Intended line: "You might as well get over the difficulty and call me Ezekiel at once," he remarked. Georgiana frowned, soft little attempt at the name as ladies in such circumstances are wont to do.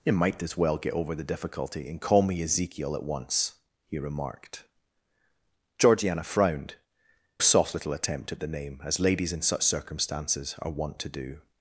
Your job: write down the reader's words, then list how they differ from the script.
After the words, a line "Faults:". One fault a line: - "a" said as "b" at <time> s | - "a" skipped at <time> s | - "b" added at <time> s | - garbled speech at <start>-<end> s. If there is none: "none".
"You might as well get over the difficulty and call me Ezekiel at once," he remarked. Georgiana frowned, soft little attempt at the name as ladies in such circumstances are wont to do.
Faults:
none